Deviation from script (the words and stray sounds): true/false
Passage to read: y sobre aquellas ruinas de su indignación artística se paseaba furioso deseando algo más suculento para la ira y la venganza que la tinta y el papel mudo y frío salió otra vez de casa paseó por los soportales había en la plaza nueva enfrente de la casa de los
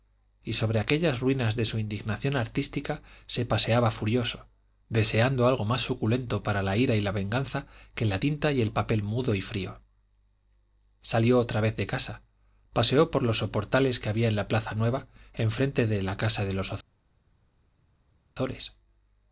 true